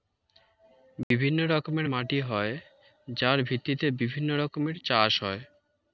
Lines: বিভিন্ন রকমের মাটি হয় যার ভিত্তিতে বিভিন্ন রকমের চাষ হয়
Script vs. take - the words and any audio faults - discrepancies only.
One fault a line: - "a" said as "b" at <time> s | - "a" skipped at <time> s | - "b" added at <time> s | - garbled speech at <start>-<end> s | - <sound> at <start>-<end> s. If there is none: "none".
- dropout at 1.0-1.1 s